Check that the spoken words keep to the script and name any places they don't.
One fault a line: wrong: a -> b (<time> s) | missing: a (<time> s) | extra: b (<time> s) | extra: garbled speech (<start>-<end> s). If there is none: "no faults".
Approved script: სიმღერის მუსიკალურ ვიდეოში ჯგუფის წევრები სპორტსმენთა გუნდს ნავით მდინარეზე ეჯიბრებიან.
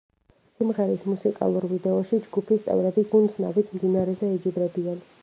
missing: სპორტსმენთა (3.1 s)